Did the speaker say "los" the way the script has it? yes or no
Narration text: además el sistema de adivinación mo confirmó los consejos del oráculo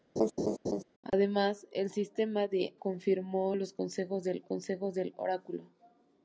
no